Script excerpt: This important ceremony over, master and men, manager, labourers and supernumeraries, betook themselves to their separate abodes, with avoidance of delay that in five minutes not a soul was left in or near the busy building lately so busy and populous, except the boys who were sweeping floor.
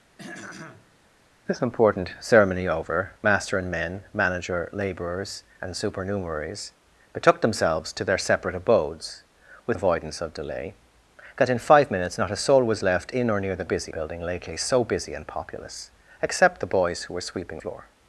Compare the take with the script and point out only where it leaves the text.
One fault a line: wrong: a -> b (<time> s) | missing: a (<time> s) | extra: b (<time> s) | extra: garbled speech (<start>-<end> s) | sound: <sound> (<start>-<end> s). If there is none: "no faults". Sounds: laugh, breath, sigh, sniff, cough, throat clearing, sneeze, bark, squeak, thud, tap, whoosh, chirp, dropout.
sound: throat clearing (0.2-1.0 s)